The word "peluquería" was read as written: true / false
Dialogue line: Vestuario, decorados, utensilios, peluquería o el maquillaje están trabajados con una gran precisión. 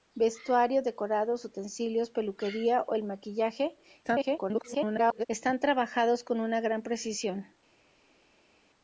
true